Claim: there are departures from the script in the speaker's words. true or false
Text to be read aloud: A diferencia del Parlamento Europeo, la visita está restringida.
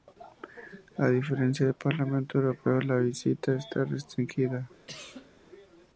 false